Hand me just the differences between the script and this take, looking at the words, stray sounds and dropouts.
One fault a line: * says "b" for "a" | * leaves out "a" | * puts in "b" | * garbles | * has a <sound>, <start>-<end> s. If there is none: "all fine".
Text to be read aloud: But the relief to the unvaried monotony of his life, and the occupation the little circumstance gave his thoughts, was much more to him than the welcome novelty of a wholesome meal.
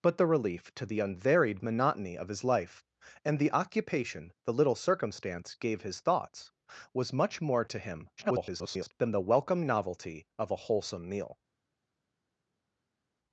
* garbles